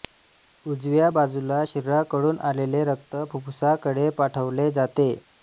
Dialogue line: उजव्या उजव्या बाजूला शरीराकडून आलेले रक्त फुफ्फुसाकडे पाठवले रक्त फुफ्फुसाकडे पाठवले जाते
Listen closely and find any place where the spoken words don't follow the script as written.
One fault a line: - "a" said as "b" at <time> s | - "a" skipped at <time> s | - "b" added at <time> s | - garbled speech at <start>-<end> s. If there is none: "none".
- "उजव्या" skipped at 1.1 s
- "रक्त फुफ्फुसाकडे पाठवले" skipped at 4.7 s